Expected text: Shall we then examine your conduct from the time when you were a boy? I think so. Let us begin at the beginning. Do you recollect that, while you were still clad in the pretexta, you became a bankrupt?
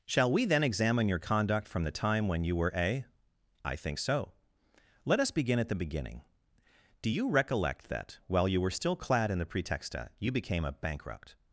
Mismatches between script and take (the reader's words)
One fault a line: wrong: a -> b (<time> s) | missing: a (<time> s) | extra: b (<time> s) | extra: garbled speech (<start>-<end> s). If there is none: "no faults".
missing: boy (3.0 s)